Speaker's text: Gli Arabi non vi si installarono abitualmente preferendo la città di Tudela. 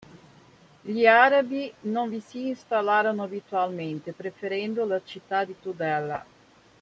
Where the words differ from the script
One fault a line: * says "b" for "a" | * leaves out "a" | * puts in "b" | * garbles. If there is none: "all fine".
all fine